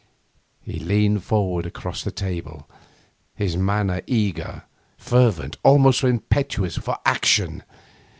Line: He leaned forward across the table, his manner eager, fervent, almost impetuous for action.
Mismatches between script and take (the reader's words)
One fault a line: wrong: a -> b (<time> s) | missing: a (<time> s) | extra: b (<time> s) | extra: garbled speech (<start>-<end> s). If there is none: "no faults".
no faults